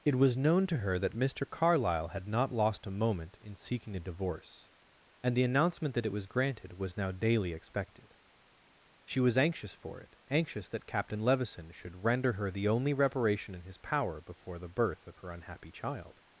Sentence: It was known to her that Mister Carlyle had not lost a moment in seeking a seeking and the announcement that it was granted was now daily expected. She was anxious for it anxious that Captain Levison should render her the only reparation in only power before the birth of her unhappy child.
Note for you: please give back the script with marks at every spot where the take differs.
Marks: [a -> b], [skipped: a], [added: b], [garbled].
It was known to her that Mister Carlyle had not lost a moment in seeking a [seeking -> divorce] and the announcement that it was granted was now daily expected. She was anxious for it anxious that Captain Levison should render her the only reparation in [only -> his] power before the birth of her unhappy child.